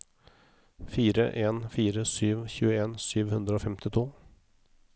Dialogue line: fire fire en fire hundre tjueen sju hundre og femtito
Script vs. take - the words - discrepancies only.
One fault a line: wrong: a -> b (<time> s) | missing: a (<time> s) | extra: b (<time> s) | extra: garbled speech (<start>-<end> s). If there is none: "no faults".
missing: fire (1.2 s)
wrong: hundre -> sju (2.1 s)